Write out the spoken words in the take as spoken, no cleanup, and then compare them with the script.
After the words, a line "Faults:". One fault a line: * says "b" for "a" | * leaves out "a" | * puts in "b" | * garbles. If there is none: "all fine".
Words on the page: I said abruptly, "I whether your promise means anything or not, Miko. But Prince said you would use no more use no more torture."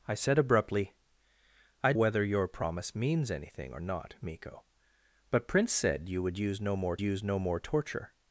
I said abruptly, "I whether your promise means anything or not, Miko. But Prince said you would use no more use no more torture."
Faults:
all fine